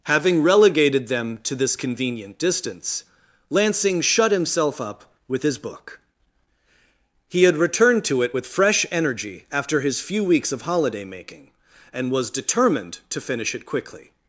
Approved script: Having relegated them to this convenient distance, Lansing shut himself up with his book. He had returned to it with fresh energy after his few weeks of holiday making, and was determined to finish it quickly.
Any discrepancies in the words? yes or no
no